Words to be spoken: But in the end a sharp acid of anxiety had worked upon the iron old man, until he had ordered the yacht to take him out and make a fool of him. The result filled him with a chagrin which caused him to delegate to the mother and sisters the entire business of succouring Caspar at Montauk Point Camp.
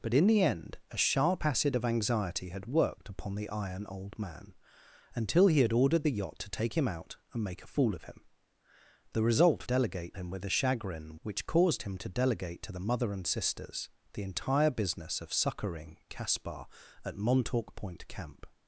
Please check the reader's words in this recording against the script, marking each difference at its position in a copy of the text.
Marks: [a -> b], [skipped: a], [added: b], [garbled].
But in the end a sharp acid of anxiety had worked upon the iron old man, until he had ordered the yacht to take him out and make a fool of him. The result [filled -> delegate] him with a chagrin which caused him to delegate to the mother and sisters the entire business of succouring Caspar at Montauk Point Camp.